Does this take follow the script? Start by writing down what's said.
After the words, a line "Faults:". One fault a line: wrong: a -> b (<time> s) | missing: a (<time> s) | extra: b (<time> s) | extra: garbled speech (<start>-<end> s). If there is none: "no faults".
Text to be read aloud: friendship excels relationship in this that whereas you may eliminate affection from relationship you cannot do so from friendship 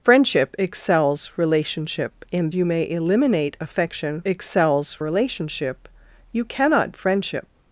friendship excels relationship in you may eliminate affection excels relationship you cannot friendship
Faults:
missing: this that whereas (2.5 s)
wrong: from -> excels (4.2 s)
missing: do so from (6.9 s)